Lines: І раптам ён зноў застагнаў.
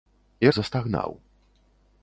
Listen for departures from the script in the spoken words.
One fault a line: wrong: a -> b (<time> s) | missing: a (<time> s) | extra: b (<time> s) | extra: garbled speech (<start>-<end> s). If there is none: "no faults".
missing: раптам ён зноў (0.5 s)